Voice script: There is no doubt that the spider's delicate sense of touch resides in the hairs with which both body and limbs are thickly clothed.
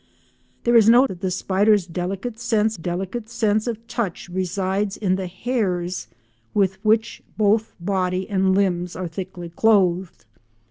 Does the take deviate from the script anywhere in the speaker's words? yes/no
yes